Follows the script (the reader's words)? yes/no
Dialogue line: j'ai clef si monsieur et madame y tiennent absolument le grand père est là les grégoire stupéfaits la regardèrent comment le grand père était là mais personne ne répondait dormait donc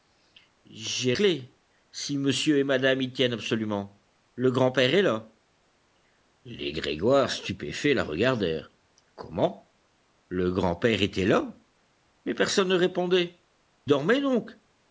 yes